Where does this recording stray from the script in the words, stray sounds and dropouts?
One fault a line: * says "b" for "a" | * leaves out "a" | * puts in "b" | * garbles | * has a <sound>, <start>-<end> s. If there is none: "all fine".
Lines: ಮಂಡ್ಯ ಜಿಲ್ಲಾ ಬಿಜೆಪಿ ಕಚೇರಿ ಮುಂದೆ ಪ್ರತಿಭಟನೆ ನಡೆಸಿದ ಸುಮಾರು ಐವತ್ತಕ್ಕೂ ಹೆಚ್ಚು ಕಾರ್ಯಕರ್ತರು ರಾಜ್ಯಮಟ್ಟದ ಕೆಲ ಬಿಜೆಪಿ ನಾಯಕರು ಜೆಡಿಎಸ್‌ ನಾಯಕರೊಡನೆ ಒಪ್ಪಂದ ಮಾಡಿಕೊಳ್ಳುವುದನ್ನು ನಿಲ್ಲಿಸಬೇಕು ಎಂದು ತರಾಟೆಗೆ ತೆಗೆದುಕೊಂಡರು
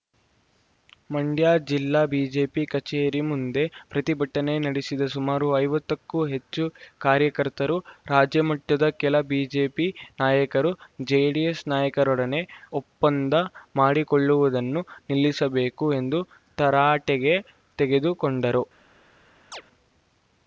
* has a chirp, 19.5-19.6 s